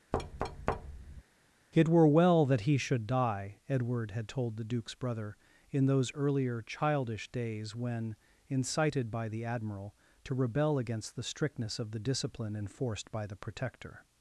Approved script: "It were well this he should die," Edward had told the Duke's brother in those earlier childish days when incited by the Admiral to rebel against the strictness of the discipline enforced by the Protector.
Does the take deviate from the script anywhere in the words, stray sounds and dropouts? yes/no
yes